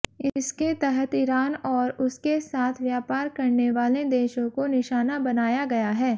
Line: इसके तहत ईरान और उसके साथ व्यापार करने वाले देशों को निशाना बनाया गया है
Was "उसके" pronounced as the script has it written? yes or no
yes